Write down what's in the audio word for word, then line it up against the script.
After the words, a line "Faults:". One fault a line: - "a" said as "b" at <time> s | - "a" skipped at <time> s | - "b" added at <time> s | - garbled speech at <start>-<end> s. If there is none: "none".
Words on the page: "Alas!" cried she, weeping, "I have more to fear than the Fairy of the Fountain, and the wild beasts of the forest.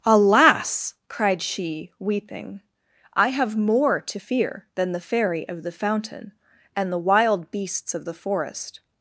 "Alas!" cried she, weeping, "I have more to fear than the Fairy of the Fountain, and the wild beasts of the forest.
Faults:
none